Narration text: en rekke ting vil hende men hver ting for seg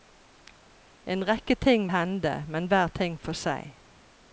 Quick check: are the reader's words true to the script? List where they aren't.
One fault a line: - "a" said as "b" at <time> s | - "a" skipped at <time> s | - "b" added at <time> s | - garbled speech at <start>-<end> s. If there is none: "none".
- "vil" skipped at 1.9 s